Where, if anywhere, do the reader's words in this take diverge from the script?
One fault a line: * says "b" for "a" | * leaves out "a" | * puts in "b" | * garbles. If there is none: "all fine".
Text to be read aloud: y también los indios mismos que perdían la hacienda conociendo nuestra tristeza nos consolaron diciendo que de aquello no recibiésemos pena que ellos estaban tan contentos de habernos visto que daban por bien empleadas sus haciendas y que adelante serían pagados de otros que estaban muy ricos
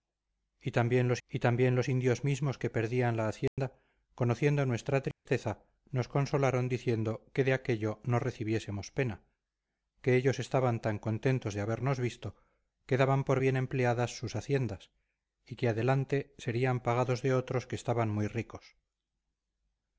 * puts in "y también los"